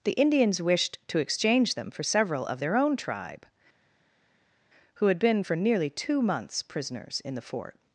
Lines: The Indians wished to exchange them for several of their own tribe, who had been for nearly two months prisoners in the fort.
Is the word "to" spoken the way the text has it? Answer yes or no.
yes